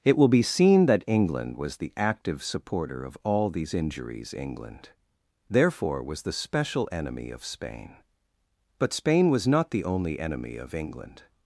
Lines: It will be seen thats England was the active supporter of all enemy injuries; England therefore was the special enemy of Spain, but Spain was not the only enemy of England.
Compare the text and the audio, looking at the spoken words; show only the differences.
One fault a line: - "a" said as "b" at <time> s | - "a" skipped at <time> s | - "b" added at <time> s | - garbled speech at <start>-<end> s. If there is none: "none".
- "thats" said as "that" at 0.9 s
- "enemy" said as "these" at 3.5 s